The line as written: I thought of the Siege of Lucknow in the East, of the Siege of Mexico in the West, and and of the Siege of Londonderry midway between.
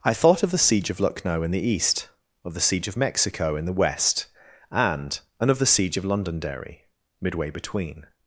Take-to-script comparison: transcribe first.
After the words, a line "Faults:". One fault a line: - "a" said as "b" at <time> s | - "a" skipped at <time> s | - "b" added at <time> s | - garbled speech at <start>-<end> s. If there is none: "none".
I thought of the Siege of Lucknow in the East, of the Siege of Mexico in the West, and and of the Siege of Londonderry midway between.
Faults:
none